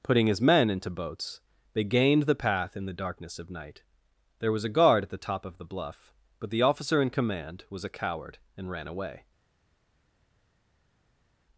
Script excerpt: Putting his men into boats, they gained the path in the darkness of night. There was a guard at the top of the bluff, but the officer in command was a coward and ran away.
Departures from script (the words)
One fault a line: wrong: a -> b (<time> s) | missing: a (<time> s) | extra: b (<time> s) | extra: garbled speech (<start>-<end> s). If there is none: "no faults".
no faults